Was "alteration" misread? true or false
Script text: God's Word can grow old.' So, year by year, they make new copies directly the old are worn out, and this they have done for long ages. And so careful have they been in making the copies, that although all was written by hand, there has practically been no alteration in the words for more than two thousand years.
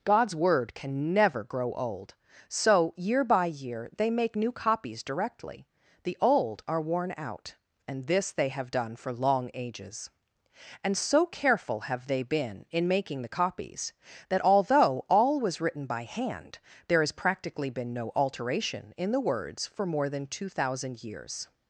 false